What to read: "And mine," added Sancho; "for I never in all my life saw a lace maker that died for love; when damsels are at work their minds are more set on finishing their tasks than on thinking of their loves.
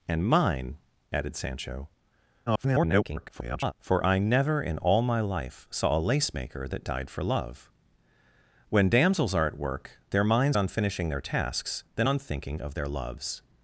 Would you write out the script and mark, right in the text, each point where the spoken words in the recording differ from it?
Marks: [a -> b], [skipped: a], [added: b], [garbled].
"And mine," added Sancho; [garbled] "for I never in all my life saw a lace maker that died for love; when damsels are at work their minds [skipped: are more set] on finishing their tasks than on thinking of their loves.